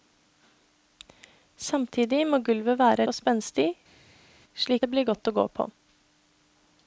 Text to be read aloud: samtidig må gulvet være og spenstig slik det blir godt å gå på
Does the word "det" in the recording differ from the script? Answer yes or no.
no